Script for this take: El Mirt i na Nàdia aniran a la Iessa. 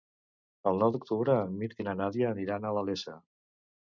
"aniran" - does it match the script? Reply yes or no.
yes